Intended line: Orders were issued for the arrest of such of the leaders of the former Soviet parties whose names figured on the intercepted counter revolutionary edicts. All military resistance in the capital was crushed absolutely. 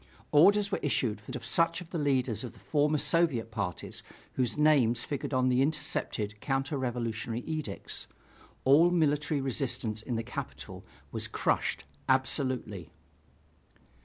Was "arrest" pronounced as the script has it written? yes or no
no